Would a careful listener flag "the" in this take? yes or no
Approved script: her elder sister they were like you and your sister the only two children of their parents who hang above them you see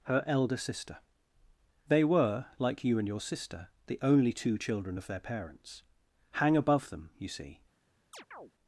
no